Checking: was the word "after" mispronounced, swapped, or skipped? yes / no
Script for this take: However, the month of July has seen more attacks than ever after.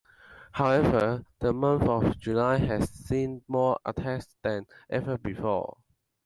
yes